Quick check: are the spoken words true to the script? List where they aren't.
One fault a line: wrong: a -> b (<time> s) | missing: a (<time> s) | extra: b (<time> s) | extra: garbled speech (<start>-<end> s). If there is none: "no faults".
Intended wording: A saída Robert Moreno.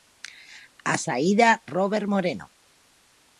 no faults